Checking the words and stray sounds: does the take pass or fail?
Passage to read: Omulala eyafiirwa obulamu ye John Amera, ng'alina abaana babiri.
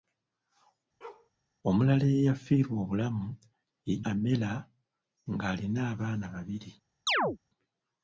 fail